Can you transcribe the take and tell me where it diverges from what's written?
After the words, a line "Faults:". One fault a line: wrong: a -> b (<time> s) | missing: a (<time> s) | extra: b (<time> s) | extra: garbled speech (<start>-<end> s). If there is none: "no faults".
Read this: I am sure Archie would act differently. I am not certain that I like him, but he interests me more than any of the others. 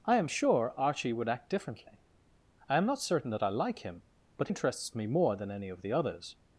I am sure Archie would act differently. I am not certain that I like him, but interests me more than any of the others.
Faults:
missing: he (4.5 s)